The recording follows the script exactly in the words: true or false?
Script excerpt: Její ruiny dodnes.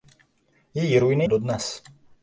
true